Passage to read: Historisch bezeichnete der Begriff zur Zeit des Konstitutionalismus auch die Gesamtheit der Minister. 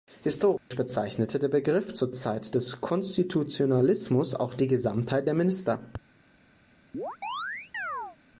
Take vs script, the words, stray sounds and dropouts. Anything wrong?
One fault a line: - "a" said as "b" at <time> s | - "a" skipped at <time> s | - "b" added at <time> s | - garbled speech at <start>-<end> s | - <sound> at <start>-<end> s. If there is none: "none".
- dropout at 0.6-0.7 s
- chirp at 6.9-8.2 s